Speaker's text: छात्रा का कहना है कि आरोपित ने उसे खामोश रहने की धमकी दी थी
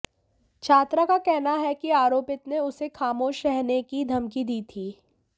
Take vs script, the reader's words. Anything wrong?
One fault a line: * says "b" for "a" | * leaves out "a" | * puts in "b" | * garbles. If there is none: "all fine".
all fine